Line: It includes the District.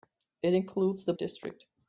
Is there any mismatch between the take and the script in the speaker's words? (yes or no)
no